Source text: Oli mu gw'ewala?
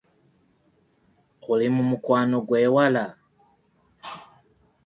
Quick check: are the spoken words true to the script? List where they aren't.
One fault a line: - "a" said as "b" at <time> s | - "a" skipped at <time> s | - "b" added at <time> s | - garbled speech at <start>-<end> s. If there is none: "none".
- "mukwano" added at 1.9 s